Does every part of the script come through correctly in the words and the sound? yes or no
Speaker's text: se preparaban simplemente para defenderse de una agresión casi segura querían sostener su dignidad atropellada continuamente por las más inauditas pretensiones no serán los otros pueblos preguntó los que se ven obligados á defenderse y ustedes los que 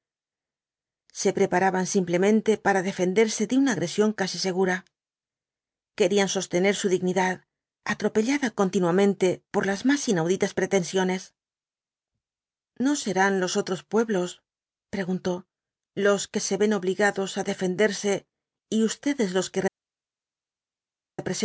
yes